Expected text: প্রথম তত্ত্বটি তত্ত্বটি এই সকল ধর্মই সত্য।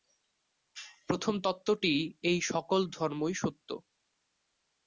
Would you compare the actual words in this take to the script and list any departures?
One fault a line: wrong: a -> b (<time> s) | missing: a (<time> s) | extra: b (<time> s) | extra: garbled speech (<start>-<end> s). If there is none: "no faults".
missing: তত্ত্বটি (1.9 s)